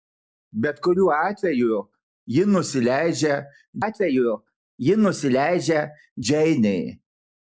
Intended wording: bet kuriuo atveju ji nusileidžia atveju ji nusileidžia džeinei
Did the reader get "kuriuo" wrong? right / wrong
right